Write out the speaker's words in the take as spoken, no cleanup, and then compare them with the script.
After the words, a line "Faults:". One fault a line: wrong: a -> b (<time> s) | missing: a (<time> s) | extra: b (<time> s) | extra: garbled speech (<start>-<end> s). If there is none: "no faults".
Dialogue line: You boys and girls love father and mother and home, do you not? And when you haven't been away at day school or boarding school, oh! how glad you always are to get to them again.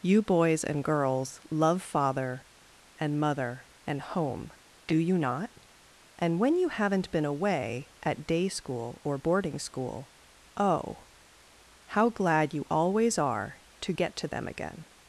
You boys and girls love father and mother and home, do you not? And when you haven't been away at day school or boarding school, oh! how glad you always are to get to them again.
Faults:
no faults